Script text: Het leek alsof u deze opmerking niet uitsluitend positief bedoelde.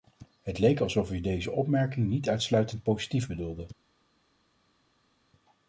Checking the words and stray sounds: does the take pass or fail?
pass